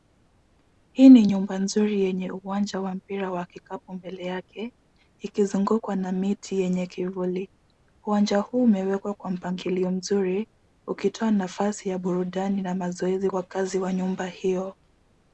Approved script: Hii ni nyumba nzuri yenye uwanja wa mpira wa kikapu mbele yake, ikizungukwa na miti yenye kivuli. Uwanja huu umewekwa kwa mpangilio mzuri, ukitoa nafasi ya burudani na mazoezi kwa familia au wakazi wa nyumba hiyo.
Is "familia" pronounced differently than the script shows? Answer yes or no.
yes